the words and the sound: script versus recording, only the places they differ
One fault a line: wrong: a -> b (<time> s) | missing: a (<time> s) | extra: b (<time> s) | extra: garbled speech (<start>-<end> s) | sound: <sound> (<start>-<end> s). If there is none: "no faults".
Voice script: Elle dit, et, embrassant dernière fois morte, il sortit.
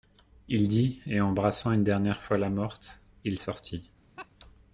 wrong: Elle -> Il (0.5 s)
extra: une (1.7 s)
extra: la (2.4 s)
sound: laugh (4.2-4.3 s)